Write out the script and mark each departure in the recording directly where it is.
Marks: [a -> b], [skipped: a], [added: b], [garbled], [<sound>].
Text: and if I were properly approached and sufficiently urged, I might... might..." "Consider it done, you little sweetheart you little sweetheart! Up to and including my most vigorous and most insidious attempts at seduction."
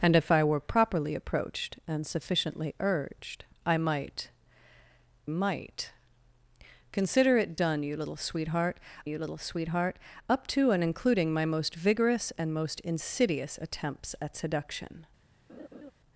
and if I were properly approached and sufficiently urged, I might... might..." "Consider it done, you little sweetheart you little sweetheart! Up to and including my most vigorous and most insidious attempts at seduction." [laugh]